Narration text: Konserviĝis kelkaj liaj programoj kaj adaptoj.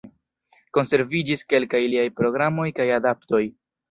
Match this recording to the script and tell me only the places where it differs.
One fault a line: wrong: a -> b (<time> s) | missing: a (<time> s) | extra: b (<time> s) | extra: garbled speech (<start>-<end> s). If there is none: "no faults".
no faults